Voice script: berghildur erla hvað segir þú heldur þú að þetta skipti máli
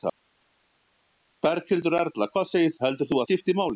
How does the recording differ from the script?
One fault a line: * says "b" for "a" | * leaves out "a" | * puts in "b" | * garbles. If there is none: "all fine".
* leaves out "þú"
* leaves out "að þetta"